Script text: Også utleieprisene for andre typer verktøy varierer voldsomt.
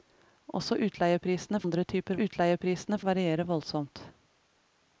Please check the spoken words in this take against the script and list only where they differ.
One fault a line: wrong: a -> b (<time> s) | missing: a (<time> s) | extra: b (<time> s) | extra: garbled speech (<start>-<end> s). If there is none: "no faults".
missing: for (1.6 s)
wrong: verktøy -> utleieprisene (2.2 s)